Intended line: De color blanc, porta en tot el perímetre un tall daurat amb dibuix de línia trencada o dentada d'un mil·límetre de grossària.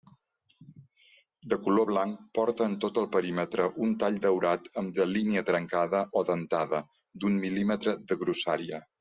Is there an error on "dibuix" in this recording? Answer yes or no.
yes